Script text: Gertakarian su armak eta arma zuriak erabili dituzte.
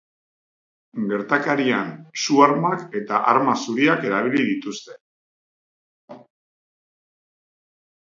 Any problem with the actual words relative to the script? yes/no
no